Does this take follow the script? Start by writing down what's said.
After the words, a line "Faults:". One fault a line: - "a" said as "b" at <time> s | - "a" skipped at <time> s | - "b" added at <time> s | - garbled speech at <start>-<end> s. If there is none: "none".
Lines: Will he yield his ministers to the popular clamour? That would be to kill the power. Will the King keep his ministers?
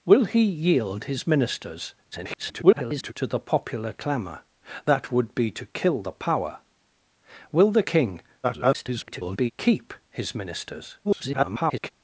Will he yield his ministers [garbled] to the popular clamour? That would be to kill the power. Will the King [garbled] keep his ministers? [garbled]
Faults:
- garbled speech at 2.1-3.1 s
- garbled speech at 8.4-9.5 s
- garbled speech at 11.0-11.9 s